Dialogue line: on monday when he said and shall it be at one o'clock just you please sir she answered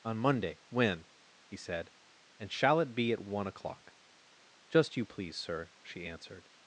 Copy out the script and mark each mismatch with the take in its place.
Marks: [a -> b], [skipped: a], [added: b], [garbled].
on monday when he said and shall it be at one o'clock just you please sir she answered